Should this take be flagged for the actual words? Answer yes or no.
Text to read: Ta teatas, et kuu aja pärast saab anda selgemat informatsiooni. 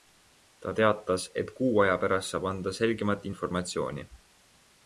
no